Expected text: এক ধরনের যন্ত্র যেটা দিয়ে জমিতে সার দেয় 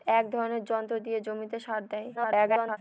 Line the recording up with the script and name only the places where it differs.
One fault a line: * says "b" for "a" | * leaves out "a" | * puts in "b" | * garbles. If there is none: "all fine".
* leaves out "যেটা"
* garbles